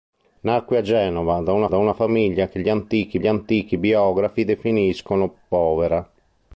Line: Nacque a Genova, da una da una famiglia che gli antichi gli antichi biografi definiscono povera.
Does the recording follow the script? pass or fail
pass